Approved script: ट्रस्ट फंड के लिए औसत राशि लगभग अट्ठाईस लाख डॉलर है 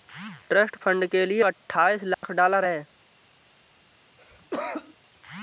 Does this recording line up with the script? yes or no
no